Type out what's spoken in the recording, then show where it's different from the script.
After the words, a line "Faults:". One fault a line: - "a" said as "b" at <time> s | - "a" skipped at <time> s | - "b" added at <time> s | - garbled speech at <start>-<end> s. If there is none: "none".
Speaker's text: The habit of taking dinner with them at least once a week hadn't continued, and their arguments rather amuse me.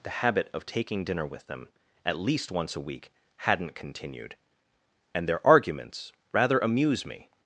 The habit of taking dinner with them at least once a week hadn't continued, and their arguments rather amuse me.
Faults:
none